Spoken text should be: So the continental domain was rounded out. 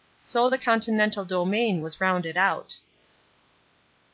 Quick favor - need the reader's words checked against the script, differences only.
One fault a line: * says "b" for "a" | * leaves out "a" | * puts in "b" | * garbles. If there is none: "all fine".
all fine